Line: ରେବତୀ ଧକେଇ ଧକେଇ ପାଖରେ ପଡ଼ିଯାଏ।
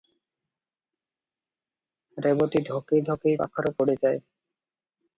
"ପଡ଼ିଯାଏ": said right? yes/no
yes